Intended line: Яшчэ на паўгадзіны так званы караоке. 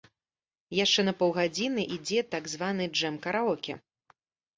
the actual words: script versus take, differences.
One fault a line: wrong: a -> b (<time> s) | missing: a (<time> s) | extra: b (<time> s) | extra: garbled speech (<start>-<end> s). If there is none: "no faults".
extra: ідзе (2.0 s)
extra: джэм (3.0 s)